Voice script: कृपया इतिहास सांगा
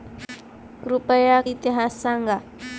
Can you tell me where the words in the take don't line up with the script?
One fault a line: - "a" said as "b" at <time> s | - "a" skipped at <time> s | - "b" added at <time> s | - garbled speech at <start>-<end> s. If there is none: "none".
none